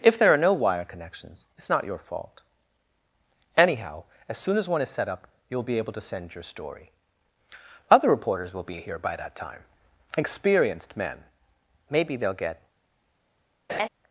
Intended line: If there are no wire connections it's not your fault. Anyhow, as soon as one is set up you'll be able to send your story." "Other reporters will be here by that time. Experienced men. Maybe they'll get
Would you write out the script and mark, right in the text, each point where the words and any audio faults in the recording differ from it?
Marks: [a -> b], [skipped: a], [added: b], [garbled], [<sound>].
If there are no wire connections it's not your fault. Anyhow, as soon as one is set up you'll be able to send your story." "Other reporters will be here by that time. Experienced men. Maybe they'll get [laugh]